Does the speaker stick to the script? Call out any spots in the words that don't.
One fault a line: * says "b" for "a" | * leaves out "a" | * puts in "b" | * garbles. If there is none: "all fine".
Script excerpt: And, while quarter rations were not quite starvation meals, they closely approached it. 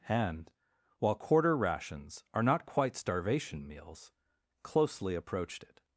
* says "are" for "were"
* leaves out "they"